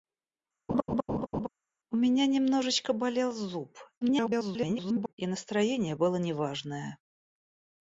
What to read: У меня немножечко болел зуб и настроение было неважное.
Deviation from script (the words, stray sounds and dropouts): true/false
true